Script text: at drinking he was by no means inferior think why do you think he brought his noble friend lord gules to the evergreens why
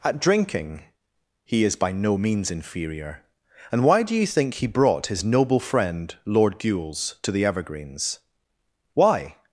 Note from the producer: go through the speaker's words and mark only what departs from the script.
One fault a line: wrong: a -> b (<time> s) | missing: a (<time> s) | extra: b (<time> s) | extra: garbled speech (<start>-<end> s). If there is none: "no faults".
wrong: was -> is (1.6 s)
wrong: think -> and (3.7 s)